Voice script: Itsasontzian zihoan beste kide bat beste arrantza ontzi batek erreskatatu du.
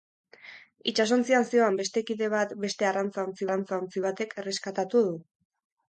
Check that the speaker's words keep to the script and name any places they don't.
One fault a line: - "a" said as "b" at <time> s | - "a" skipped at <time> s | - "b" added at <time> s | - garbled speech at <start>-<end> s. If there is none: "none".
- "arrantza ontzi" added at 3.4 s